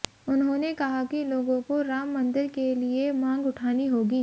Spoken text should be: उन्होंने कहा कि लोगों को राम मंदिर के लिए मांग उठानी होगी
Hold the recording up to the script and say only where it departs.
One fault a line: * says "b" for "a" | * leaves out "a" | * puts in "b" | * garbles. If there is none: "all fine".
all fine